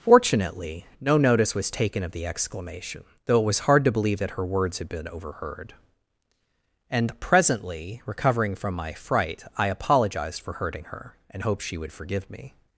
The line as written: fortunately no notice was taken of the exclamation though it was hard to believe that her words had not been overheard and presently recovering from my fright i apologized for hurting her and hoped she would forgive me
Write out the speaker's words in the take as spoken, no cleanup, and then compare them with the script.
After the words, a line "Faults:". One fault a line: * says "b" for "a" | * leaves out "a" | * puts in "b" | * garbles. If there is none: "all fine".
fortunately no notice was taken of the exclamation though it was hard to believe that her words had been overheard and presently recovering from my fright i apologized for hurting her and hoped she would forgive me
Faults:
* leaves out "not"